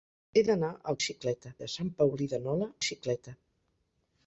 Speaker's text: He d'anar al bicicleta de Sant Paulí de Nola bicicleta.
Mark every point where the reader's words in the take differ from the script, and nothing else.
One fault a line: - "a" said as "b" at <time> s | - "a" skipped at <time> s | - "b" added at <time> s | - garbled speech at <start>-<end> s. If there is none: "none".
none